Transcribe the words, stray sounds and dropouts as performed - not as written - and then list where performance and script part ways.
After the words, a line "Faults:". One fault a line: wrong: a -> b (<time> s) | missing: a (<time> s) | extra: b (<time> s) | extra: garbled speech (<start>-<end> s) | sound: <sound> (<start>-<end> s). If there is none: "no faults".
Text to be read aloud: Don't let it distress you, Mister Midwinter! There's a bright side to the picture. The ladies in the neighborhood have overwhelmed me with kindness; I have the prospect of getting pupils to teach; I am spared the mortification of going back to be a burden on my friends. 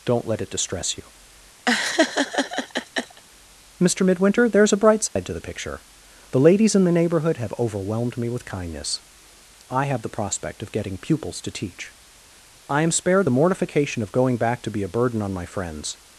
Don't let it distress you, Mister Midwinter! There's a bright side to the picture. The ladies in the neighborhood have overwhelmed me with kindness; I have the prospect of getting pupils to teach; I am spared the mortification of going back to be a burden on my friends.
Faults:
sound: laugh (1.7-3.2 s)
sound: dropout (5.1-5.2 s)